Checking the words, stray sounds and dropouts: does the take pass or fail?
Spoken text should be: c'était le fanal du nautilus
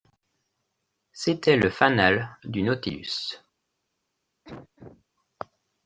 fail